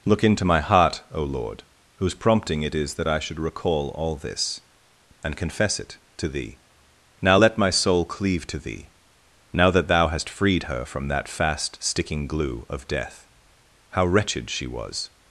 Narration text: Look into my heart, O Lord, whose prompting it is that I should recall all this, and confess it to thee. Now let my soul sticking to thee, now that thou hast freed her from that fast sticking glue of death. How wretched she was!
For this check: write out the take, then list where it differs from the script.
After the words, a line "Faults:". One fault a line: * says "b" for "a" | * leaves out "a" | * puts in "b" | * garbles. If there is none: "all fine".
Look into my heart, O Lord, whose prompting it is that I should recall all this, and confess it to thee. Now let my soul cleave to thee, now that thou hast freed her from that fast sticking glue of death. How wretched she was!
Faults:
* says "cleave" for "sticking"